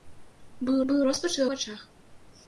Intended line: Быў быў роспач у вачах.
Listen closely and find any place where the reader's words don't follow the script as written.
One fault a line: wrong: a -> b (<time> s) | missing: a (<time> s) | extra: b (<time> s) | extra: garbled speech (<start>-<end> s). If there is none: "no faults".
no faults